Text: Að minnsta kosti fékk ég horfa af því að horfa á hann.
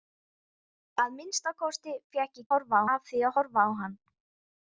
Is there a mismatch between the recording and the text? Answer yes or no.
no